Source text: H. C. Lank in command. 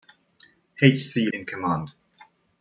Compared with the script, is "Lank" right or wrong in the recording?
wrong